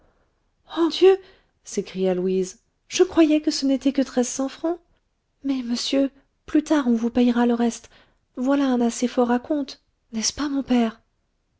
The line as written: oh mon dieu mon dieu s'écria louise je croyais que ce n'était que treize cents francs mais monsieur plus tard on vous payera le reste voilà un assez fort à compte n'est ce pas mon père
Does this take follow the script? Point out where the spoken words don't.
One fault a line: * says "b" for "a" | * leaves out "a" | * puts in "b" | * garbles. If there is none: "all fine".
* leaves out "mon dieu mon"